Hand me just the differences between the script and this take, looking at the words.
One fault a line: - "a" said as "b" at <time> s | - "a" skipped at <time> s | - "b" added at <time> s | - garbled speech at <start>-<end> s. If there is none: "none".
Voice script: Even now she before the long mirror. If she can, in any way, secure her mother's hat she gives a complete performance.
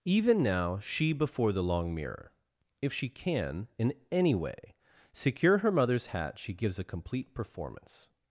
none